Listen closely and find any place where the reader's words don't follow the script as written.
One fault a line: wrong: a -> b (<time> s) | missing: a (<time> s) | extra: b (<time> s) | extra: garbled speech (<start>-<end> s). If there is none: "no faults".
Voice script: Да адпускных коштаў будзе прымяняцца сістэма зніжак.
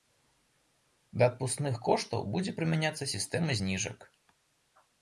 no faults